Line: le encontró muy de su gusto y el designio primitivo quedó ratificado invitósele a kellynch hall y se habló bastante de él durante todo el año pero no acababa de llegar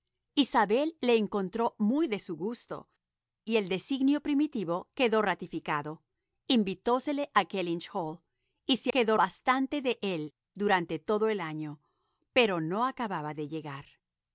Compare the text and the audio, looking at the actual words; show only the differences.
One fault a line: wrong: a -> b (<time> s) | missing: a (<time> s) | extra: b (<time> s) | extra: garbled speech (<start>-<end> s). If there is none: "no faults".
wrong: habló -> quedó (8.9 s)